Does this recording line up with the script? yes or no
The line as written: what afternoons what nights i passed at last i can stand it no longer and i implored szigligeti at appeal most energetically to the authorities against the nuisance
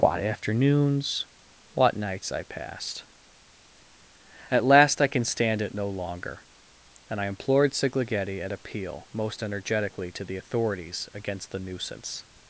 yes